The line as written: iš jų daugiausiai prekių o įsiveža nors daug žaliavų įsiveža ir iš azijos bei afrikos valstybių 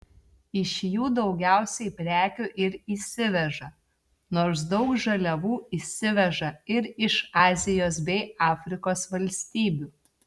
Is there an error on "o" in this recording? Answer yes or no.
yes